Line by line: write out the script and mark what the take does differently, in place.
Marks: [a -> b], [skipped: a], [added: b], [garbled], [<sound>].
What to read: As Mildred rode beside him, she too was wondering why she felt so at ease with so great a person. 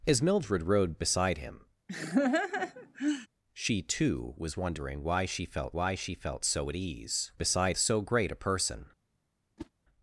As Mildred rode beside him, [laugh] she too was wondering why she felt [added: why she felt] so at ease [with -> beside] so great a person. [whoosh]